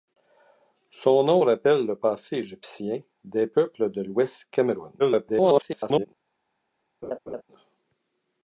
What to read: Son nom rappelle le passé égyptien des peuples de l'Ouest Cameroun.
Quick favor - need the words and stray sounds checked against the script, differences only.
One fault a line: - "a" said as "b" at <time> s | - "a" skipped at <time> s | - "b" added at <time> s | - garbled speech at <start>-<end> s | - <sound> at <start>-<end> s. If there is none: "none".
- garbled speech at 5.0-6.1 s
- laugh at 7.0-7.4 s